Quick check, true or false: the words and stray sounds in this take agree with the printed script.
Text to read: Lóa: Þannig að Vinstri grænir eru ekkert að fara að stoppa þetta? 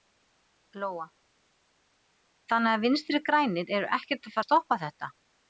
false